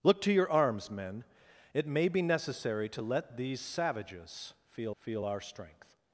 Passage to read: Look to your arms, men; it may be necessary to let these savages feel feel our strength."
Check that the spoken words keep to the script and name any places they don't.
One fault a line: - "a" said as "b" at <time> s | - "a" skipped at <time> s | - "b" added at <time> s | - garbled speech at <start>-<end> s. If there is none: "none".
none